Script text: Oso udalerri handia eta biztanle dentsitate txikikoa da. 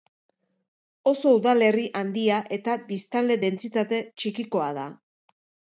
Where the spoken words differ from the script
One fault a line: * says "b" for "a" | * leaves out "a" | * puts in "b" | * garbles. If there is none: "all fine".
all fine